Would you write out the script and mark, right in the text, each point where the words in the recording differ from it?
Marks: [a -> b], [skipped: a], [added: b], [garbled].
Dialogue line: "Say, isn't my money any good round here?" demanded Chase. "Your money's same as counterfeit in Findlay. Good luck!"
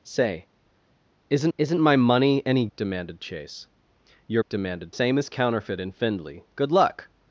"Say, isn't [added: isn't] my money any [skipped: good round here?"] demanded Chase. "Your [money's -> demanded] same as counterfeit in Findlay. Good luck!"